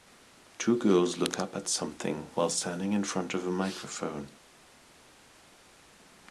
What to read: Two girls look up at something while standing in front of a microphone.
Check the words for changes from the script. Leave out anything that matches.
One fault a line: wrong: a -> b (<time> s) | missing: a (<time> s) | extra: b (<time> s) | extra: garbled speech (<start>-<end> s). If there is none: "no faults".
no faults